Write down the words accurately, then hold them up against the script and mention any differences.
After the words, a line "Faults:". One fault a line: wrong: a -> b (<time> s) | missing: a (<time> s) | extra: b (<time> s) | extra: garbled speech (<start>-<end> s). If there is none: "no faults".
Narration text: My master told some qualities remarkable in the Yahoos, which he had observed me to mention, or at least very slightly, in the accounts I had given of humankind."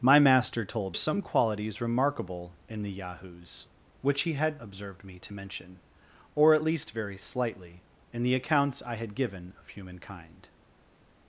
My master told some qualities remarkable in the Yahoos, which he had observed me to mention, or at least very slightly, in the accounts I had given of humankind."
Faults:
no faults